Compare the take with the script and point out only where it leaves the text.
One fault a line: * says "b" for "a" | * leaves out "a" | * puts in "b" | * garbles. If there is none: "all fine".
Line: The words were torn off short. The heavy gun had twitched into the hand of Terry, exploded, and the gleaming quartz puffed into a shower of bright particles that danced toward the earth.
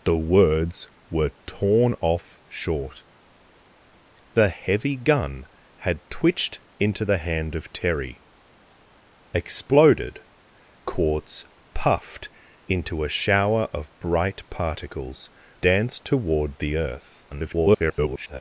* leaves out "and the gleaming"
* leaves out "that"
* garbles